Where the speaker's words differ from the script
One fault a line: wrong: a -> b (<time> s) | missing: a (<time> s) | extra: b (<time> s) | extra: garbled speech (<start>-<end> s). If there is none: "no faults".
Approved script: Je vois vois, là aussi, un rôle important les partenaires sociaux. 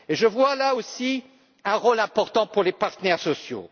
missing: vois (0.6 s)
extra: pour (2.5 s)